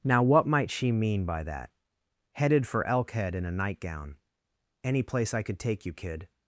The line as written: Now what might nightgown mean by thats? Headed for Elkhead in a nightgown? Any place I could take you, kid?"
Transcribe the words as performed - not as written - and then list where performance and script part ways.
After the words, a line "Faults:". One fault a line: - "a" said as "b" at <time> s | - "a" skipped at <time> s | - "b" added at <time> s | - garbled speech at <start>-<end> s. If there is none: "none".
Now what might she mean by that? Headed for Elkhead in a nightgown? Any place I could take you, kid?"
Faults:
- "nightgown" said as "she" at 0.7 s
- "thats" said as "that" at 1.4 s